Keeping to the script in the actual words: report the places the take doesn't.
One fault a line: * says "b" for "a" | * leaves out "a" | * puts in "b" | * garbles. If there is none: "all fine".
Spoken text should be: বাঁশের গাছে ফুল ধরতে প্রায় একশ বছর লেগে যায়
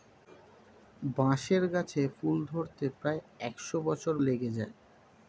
all fine